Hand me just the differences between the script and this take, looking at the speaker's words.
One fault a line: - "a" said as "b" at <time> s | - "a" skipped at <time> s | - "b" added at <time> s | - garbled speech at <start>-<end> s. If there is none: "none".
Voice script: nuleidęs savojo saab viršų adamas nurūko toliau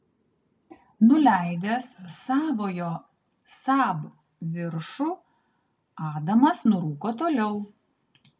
none